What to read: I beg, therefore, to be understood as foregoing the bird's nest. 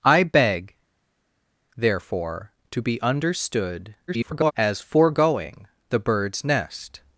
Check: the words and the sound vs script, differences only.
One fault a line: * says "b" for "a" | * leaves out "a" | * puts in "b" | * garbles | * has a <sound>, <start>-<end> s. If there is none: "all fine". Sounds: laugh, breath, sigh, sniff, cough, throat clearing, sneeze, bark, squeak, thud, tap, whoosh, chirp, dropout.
* garbles